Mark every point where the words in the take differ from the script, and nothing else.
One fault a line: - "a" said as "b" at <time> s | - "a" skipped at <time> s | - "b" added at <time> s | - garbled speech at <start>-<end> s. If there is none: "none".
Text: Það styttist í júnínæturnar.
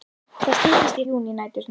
none